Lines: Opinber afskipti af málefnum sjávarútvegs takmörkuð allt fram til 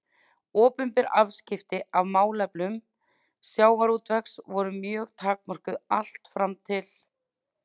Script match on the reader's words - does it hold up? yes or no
no